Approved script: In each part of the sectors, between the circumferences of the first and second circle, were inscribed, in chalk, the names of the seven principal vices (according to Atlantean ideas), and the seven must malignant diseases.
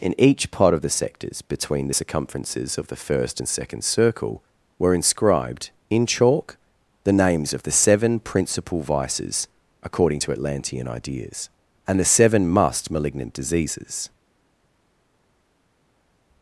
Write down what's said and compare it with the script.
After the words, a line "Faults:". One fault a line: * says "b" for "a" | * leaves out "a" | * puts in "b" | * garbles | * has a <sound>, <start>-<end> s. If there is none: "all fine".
In each part of the sectors, between the circumferences of the first and second circle, were inscribed, in chalk, the names of the seven principal vices (according to Atlantean ideas), and the seven must malignant diseases.
Faults:
all fine